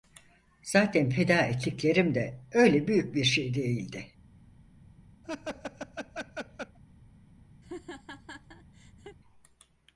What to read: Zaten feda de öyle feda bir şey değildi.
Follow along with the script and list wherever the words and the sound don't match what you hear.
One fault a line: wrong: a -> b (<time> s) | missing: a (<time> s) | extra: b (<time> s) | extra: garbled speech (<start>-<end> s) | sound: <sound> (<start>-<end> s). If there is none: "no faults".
extra: ettiklerim (1.4 s)
wrong: feda -> büyük (2.9 s)
sound: laugh (5.2-6.8 s)
sound: laugh (7.6-9.2 s)